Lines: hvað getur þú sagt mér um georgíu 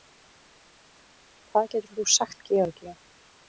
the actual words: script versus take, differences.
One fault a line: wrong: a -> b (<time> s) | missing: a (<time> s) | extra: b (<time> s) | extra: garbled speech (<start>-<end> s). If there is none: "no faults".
missing: mér (2.4 s)